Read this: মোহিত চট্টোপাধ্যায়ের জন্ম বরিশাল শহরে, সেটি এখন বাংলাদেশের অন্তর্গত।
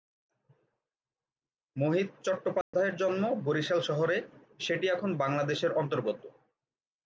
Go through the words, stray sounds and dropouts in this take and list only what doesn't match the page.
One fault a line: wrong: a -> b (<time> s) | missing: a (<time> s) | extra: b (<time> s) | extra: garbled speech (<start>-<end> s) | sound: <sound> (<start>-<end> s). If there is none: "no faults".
sound: dropout (2.6-2.7 s)